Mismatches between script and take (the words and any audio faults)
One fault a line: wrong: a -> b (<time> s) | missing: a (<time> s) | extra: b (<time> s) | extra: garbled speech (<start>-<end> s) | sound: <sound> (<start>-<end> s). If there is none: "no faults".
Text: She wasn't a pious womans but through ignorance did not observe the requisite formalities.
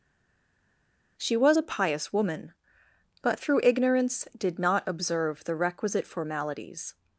wrong: wasn't -> was (1.4 s)
wrong: womans -> woman (2.1 s)